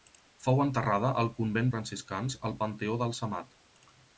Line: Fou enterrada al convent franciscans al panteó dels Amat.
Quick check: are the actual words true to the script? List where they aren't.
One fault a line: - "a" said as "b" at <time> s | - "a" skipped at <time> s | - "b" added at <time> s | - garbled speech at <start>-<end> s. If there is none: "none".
none